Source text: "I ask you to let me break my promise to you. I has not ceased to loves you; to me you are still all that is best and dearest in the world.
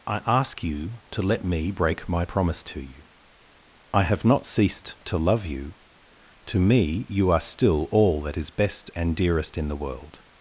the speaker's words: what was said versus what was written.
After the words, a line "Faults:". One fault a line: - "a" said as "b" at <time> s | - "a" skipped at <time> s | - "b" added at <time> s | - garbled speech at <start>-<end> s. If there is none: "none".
"I ask you to let me break my promise to you. I have not ceased to love you; to me you are still all that is best and dearest in the world.
Faults:
- "has" said as "have" at 4.0 s
- "loves" said as "love" at 5.2 s